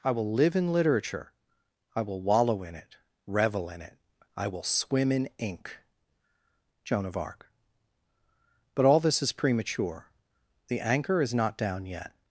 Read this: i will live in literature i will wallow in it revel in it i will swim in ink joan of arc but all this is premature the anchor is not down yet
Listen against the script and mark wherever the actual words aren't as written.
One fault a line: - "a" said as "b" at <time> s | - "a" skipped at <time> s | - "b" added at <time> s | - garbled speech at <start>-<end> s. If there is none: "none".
none